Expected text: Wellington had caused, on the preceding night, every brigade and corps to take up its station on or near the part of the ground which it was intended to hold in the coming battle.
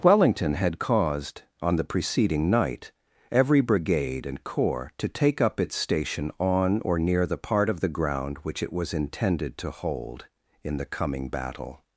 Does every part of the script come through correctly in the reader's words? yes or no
yes